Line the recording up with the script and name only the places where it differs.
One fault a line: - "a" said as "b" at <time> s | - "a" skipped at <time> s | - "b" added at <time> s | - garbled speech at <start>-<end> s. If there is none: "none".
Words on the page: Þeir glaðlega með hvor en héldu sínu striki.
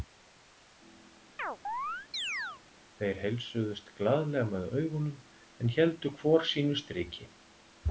- "heilsuðust" added at 3.2 s
- "hvor" said as "augunum" at 4.8 s
- "hvor" added at 6.2 s